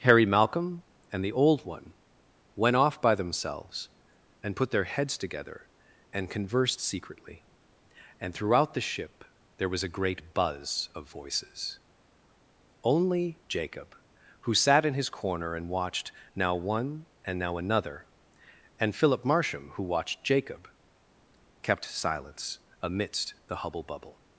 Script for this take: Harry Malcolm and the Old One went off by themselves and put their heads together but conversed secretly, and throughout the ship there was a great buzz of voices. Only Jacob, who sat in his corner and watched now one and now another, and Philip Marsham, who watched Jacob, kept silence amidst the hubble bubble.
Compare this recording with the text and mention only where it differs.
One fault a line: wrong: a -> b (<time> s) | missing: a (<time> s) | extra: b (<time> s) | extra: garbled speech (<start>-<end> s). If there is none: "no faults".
wrong: but -> and (6.1 s)